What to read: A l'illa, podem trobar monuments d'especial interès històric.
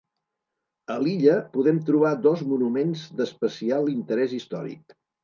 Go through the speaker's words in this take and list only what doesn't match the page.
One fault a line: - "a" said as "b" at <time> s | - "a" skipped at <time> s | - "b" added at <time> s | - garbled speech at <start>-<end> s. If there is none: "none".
- "dos" added at 2.2 s